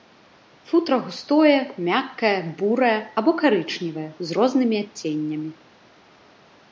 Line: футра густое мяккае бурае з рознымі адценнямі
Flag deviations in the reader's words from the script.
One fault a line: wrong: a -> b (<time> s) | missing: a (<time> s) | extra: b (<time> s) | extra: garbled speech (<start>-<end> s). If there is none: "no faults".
extra: або карычневае (3.2 s)